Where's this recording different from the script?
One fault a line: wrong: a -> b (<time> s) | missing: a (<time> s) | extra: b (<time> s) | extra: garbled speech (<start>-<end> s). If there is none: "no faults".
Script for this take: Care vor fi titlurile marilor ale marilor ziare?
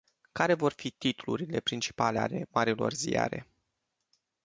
wrong: marilor -> principale (1.6 s)